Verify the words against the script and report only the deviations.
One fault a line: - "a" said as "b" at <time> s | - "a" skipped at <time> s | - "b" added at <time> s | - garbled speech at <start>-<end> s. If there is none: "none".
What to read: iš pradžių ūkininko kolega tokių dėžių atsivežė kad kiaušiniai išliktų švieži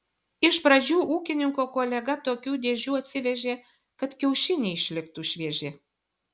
none